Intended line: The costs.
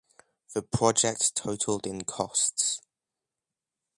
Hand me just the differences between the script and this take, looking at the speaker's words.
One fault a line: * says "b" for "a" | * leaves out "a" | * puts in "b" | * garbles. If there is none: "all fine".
* puts in "project totaled in"